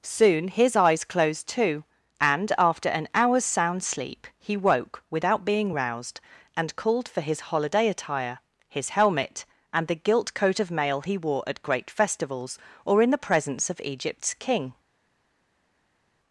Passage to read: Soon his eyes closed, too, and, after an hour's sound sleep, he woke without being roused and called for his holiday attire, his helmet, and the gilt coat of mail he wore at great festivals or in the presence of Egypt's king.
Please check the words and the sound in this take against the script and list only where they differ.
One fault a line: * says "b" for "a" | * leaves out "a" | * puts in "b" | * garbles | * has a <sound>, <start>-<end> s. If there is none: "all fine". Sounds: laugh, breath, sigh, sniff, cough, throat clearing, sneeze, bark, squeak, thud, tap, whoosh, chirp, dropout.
all fine